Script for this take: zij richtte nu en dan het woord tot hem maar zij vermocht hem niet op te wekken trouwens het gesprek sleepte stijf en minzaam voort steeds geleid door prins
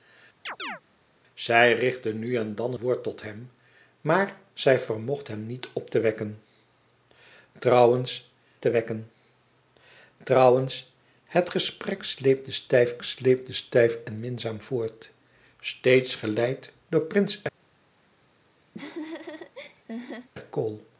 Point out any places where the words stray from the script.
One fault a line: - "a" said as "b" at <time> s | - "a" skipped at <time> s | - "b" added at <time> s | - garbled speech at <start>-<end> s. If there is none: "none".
- "het" skipped at 2.7 s
- "te wekken trouwens" added at 8.6 s
- "sleepte stijf" added at 13.0 s